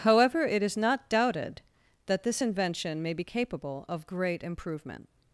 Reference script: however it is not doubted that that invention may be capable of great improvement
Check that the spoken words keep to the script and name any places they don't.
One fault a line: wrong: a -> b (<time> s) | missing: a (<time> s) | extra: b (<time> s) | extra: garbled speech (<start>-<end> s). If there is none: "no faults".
wrong: that -> this (2.2 s)